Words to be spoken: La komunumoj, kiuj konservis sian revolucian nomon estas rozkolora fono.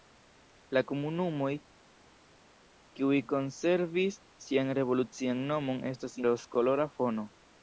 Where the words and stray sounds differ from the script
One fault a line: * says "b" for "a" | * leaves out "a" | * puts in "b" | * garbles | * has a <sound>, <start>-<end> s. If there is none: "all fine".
all fine